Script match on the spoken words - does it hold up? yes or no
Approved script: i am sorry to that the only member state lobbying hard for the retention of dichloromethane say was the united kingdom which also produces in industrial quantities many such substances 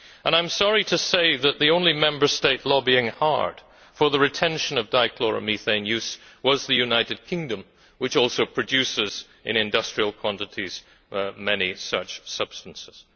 no